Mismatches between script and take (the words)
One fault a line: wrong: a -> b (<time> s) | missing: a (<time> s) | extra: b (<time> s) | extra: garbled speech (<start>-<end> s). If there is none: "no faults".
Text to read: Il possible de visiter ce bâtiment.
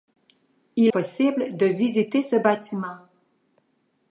no faults